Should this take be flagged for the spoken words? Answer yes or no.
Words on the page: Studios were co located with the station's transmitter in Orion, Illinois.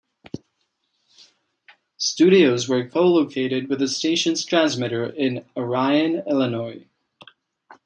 no